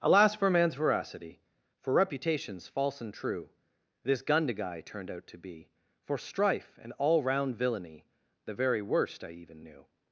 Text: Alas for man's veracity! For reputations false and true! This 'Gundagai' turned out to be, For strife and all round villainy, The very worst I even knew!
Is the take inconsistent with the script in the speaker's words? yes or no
no